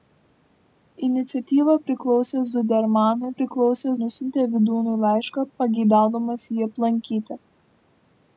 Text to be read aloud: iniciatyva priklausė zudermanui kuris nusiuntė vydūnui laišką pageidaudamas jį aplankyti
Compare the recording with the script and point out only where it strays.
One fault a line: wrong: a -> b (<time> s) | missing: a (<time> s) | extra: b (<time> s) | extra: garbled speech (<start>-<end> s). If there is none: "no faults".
wrong: kuris -> priklausė (3.4 s)